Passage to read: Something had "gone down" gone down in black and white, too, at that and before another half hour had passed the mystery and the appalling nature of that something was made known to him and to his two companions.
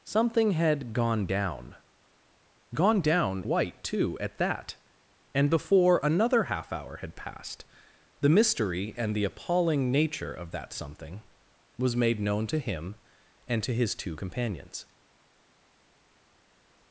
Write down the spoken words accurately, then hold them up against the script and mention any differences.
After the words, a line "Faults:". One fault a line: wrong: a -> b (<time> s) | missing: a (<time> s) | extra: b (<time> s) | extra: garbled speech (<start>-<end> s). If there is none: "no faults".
Something had "gone down" gone down white, too, at that and before another half hour had passed the mystery and the appalling nature of that something was made known to him and to his two companions.
Faults:
missing: in black and (3.4 s)